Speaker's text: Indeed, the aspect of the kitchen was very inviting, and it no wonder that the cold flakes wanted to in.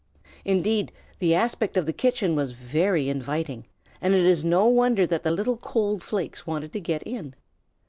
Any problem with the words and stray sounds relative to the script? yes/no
yes